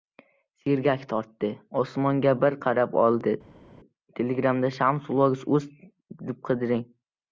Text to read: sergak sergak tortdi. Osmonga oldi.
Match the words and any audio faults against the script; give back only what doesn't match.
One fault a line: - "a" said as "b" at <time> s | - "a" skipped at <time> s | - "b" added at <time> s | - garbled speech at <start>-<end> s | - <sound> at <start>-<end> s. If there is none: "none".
- "sergak" skipped at 1.0 s
- "bir qarab" added at 2.5 s